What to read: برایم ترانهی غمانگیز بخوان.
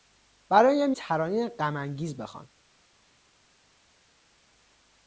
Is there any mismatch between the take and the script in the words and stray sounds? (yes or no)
no